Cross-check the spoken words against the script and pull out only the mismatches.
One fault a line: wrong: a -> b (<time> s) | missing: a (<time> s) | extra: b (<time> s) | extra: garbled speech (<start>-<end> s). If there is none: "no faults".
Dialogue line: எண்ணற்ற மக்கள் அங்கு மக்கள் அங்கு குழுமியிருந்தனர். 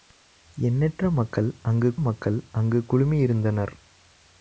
no faults